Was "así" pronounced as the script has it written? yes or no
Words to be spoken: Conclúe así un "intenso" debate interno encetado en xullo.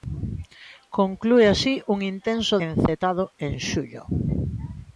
yes